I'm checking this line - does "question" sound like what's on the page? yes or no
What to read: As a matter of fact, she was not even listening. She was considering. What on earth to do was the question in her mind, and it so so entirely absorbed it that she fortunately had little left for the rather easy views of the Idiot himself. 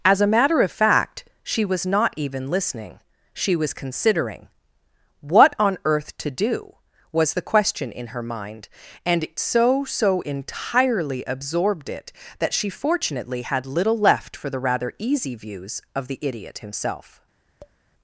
yes